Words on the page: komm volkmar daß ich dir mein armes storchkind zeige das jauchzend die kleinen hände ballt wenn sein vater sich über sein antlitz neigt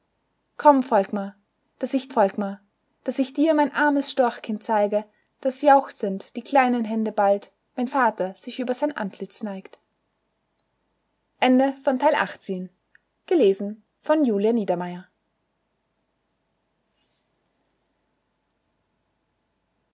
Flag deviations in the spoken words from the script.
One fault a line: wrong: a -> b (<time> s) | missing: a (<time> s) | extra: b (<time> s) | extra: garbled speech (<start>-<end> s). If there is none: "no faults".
extra: volkmar daß ich (2.1 s)
missing: sein (7.9 s)